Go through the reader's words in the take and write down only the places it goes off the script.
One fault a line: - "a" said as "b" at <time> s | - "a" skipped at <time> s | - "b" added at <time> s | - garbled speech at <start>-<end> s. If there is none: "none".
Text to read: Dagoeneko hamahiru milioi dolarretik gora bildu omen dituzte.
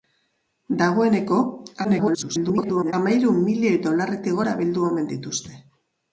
- garbled speech at 1.8-2.9 s